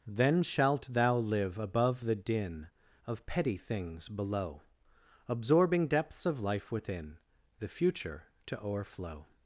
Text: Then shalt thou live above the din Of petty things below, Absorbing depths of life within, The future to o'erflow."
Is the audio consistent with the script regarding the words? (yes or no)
yes